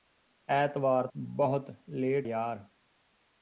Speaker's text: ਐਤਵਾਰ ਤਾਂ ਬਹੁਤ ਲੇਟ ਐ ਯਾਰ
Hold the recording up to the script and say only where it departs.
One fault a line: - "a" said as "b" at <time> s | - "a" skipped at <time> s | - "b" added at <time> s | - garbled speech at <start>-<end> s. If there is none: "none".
- "ਤਾਂ" skipped at 1.1 s
- "ਐ" skipped at 2.3 s